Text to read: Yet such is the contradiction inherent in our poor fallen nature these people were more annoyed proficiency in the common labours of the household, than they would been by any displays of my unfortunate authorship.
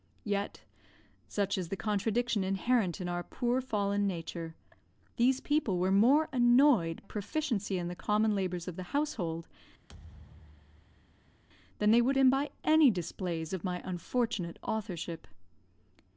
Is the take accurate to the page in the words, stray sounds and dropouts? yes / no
no